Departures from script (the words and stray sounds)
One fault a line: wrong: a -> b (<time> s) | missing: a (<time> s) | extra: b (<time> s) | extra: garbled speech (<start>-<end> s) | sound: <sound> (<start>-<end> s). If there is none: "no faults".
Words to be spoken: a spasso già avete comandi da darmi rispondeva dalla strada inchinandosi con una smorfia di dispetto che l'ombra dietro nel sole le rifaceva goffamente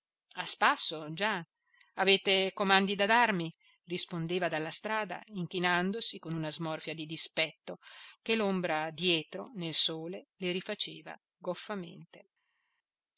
no faults